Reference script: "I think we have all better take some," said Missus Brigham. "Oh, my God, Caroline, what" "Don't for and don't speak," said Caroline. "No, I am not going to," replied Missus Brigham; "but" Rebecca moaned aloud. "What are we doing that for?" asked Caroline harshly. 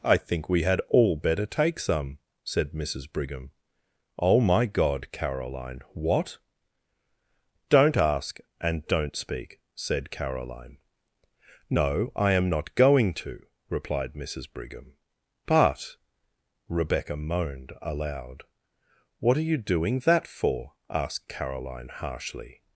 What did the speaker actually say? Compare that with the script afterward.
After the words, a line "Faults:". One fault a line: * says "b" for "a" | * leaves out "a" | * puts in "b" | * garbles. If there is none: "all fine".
"I think we had all better take some," said Missus Brigham. "Oh, my God, Caroline, what" "Don't ask and don't speak," said Caroline. "No, I am not going to," replied Missus Brigham; "but" Rebecca moaned aloud. "What are you doing that for?" asked Caroline harshly.
Faults:
* says "had" for "have"
* says "ask" for "for"
* says "you" for "we"